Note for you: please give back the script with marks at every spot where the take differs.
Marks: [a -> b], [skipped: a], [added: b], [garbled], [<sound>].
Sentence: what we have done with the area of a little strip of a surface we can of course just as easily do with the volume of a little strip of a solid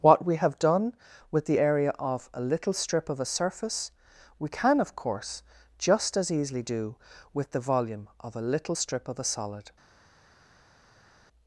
what we have done with the area of a little strip of a surface we can of course just as easily do with the volume of a little strip of a solid